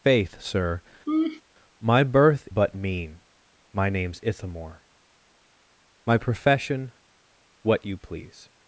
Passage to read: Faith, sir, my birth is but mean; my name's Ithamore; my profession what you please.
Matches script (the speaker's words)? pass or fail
fail